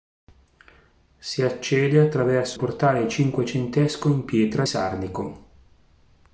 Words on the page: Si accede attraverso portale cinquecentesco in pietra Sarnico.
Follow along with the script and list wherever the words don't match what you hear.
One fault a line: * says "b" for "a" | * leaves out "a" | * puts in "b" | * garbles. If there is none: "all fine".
all fine